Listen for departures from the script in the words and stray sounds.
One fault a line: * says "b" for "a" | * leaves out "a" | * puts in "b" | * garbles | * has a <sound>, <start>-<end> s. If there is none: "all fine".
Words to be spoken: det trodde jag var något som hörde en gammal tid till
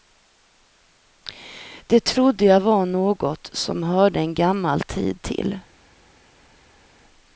all fine